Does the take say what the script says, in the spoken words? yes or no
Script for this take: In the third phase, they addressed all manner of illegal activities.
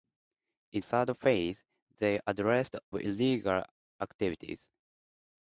no